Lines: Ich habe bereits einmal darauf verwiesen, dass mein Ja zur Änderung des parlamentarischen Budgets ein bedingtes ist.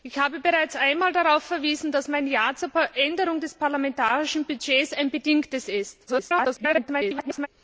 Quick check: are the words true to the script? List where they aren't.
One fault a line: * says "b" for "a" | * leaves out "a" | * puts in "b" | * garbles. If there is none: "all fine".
* garbles